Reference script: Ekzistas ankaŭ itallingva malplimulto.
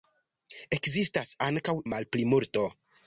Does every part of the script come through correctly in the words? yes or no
no